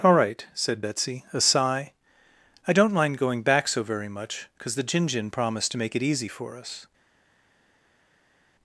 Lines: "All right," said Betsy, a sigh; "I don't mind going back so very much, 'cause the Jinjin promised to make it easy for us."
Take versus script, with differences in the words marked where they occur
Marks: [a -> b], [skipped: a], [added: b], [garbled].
"All right," said Betsy, a sigh; "I don't mind going back so very much, 'cause the Jinjin promised to make it easy for us."